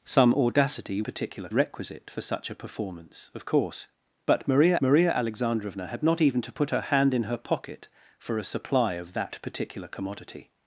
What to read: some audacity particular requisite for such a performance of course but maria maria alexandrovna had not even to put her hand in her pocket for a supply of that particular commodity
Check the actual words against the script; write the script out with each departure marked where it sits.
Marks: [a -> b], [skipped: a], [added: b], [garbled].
some audacity particular requisite for such a performance of course but maria maria alexandrovna had not even to put her hand in her pocket for a supply of that particular commodity